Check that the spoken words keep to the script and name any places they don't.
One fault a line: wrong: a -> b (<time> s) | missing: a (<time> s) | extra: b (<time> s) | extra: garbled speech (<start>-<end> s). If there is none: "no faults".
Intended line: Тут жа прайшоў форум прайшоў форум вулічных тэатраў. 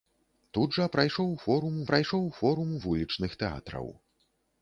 no faults